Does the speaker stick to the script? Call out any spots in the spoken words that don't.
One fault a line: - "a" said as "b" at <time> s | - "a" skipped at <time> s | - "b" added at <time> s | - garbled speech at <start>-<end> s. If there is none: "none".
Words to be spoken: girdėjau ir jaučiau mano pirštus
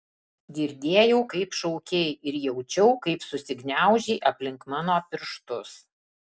- "kaip šaukei" added at 1.3 s
- "kaip susigniaužei aplink" added at 3.1 s